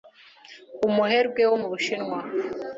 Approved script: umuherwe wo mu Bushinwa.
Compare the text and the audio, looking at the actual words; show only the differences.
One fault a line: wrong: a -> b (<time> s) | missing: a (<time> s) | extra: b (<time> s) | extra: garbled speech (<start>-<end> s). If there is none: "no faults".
no faults